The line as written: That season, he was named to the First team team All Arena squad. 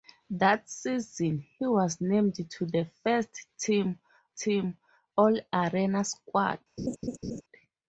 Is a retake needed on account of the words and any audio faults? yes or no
yes